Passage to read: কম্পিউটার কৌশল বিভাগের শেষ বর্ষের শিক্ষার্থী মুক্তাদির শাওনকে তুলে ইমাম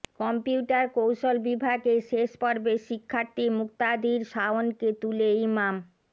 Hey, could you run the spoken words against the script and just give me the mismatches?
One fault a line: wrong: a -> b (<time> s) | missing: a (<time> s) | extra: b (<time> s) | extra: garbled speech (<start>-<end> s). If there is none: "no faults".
no faults